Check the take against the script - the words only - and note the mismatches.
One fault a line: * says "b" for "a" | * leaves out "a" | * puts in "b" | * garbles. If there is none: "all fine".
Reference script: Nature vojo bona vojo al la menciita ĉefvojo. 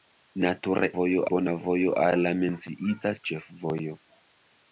all fine